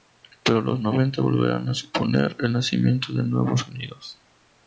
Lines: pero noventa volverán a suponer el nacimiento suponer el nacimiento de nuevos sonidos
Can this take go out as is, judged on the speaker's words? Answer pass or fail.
fail